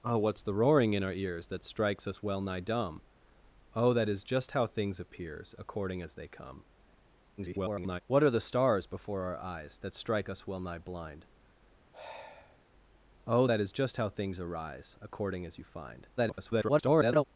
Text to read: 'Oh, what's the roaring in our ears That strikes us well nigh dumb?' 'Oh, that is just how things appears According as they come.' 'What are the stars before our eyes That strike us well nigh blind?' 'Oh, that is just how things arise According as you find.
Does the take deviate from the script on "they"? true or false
false